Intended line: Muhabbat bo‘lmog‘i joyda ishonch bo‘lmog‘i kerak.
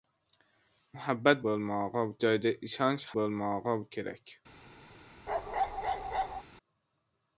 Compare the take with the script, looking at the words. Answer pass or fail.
pass